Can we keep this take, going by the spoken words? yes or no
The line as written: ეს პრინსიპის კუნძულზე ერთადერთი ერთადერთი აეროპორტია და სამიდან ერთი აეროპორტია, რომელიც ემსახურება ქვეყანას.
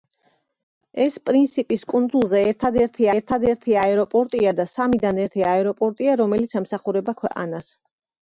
yes